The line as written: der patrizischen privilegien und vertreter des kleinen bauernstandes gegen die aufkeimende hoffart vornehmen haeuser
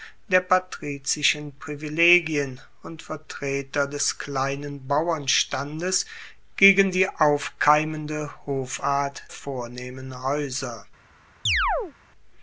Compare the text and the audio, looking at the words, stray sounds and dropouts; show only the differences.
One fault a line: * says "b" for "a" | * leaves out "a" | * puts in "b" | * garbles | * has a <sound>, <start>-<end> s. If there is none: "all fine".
* has a chirp, 11.5-11.9 s